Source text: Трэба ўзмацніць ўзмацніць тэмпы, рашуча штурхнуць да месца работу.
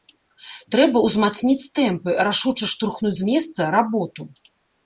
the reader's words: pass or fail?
fail